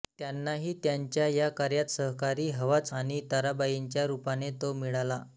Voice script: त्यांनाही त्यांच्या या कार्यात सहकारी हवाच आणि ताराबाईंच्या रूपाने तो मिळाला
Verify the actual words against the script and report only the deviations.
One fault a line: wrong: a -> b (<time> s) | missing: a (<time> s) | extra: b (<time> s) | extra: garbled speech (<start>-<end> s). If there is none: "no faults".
no faults